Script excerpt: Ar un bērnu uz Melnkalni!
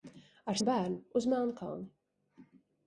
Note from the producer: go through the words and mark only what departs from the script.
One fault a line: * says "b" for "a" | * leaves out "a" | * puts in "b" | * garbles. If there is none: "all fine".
all fine